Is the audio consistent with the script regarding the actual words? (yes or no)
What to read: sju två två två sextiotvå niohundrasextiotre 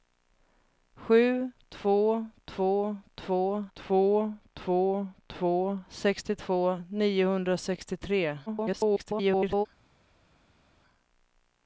no